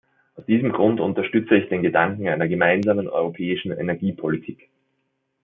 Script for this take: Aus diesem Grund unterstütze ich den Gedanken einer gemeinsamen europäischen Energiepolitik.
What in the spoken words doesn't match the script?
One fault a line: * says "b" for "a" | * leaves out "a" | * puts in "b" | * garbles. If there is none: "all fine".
all fine